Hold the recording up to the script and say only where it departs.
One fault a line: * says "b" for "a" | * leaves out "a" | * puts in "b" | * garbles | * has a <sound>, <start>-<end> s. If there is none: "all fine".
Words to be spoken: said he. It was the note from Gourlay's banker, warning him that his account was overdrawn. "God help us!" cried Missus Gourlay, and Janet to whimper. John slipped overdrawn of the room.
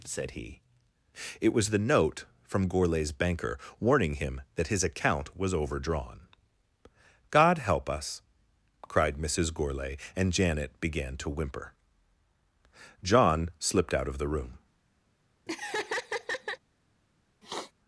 * puts in "began"
* says "out" for "overdrawn"
* has a laugh, 15.5-16.6 s
* has a sniff, 17.4-17.7 s